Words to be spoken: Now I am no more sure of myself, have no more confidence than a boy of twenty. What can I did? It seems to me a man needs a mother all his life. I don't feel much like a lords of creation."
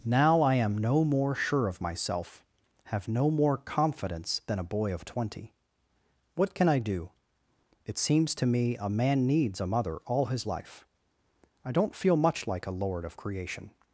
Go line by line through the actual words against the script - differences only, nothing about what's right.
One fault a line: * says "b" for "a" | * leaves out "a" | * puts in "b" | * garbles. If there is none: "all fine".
* says "do" for "did"
* says "lord" for "lords"